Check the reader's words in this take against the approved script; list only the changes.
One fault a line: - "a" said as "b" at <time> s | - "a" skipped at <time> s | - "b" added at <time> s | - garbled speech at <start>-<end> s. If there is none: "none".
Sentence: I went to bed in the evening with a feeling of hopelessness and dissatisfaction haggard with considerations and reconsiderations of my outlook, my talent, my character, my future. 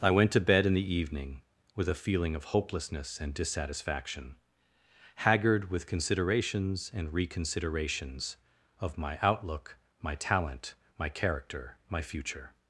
none